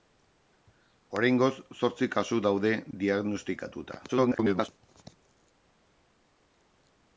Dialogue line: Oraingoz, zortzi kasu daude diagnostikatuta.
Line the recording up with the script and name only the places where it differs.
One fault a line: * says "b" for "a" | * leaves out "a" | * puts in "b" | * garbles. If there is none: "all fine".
* garbles